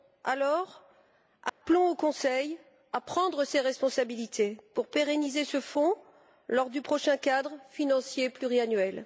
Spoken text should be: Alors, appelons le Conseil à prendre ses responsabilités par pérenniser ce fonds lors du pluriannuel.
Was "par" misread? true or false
true